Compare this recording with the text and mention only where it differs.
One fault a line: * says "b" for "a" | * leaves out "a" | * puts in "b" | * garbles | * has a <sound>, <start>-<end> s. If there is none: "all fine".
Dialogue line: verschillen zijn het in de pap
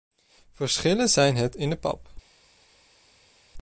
all fine